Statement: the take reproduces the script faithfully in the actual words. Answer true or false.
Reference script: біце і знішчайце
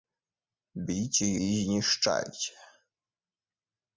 true